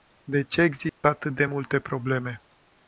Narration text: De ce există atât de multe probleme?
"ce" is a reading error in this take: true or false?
false